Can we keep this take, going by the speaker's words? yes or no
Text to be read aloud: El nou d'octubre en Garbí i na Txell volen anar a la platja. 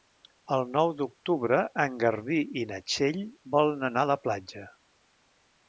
yes